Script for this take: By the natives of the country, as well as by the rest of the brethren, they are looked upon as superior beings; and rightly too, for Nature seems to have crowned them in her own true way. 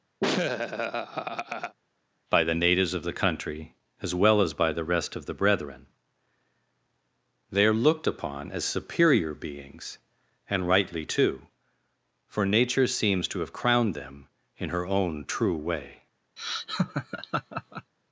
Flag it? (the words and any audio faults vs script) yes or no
yes